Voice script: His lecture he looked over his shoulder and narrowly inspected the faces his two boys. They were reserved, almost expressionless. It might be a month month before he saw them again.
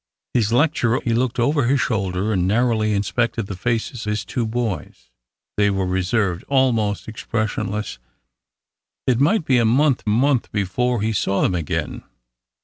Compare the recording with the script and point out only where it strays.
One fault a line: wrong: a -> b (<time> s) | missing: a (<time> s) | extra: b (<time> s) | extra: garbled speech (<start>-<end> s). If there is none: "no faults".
no faults